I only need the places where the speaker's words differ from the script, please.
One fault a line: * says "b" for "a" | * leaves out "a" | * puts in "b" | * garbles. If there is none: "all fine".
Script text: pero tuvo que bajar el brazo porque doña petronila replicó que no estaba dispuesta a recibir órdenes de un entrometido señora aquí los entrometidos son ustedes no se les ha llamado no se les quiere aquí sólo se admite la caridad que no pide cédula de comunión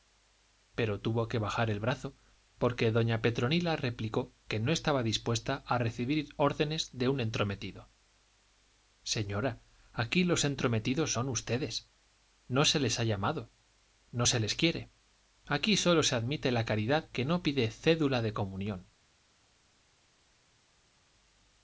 all fine